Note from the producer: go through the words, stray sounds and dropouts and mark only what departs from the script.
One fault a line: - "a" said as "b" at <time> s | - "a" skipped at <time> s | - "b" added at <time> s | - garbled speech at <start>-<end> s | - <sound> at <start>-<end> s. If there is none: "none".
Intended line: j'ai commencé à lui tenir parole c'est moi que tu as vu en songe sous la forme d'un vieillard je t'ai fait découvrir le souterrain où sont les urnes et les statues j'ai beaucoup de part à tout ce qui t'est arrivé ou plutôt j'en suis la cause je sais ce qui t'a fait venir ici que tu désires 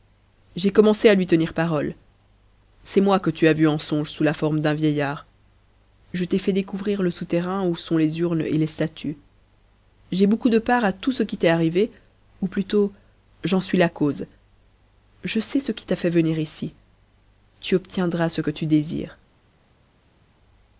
- "tu obtiendras ce" added at 17.6 s